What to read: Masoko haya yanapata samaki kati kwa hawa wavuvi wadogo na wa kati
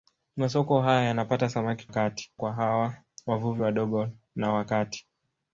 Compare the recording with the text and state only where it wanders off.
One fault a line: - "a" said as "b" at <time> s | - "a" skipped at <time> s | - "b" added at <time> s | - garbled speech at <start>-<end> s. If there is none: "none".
none